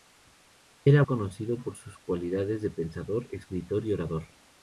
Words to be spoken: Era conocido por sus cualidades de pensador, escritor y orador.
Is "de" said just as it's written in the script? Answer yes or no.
yes